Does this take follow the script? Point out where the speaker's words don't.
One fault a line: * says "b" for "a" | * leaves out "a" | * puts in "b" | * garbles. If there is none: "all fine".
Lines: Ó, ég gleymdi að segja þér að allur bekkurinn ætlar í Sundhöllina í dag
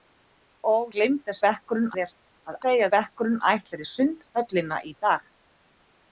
* leaves out "ég"
* says "bekkurinn" for "segja"
* says "segja" for "allur"